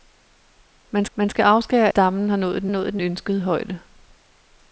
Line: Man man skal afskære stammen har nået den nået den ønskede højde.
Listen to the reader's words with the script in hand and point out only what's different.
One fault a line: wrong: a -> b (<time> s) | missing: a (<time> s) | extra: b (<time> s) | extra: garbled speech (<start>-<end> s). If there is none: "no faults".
no faults